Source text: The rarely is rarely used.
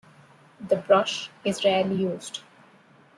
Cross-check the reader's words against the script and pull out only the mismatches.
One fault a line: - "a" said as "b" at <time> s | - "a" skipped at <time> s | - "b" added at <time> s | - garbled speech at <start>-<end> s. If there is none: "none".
- "rarely" said as "brush" at 0.8 s